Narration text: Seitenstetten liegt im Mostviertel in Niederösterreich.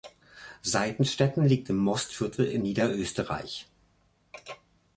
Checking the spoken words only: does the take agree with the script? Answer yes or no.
yes